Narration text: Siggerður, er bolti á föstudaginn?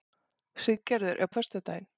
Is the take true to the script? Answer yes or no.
no